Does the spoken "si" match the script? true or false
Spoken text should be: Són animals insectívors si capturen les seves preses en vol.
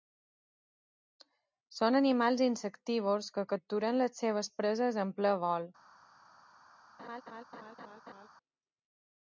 false